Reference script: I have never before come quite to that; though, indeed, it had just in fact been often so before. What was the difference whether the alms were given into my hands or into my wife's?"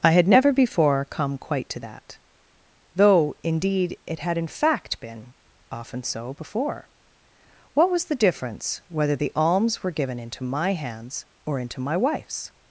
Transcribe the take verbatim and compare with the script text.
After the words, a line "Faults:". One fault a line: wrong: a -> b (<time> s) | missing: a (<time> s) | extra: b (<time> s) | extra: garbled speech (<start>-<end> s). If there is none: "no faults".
I had never before come quite to that; though, indeed, it had in fact been often so before. What was the difference whether the alms were given into my hands or into my wife's?"
Faults:
wrong: have -> had (0.1 s)
missing: just (4.4 s)